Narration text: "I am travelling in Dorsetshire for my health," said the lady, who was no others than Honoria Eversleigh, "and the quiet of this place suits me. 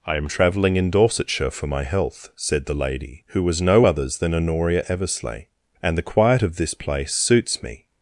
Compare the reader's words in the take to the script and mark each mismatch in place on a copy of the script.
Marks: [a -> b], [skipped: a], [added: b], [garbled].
"I am travelling in Dorsetshire for my health," said the lady, who was no others than Honoria Eversleigh, "and the quiet of this place suits me.